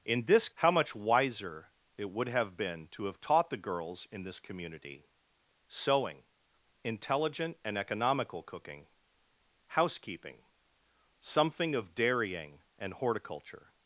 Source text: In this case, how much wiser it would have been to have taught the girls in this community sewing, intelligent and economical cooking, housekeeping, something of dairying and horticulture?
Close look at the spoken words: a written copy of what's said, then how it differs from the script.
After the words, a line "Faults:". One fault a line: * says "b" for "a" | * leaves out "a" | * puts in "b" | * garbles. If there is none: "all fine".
In this how much wiser it would have been to have taught the girls in this community sewing, intelligent and economical cooking, housekeeping, something of dairying and horticulture?
Faults:
* leaves out "case"